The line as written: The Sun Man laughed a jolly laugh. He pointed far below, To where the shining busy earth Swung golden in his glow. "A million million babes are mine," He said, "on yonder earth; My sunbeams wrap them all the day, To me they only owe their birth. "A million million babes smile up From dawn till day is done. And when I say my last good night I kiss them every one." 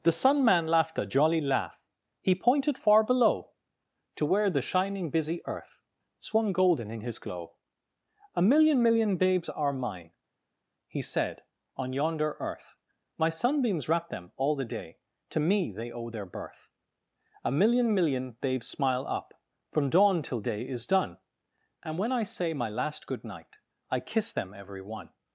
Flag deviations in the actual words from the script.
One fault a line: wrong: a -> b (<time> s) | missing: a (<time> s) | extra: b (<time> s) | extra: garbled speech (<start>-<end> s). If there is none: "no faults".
missing: only (15.9 s)